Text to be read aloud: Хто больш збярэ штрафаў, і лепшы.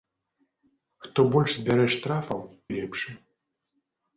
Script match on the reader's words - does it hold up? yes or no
yes